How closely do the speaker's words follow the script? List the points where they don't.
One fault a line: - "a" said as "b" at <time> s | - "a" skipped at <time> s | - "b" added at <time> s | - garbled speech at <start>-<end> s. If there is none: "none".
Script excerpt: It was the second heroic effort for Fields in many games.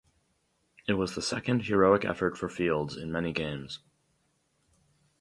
none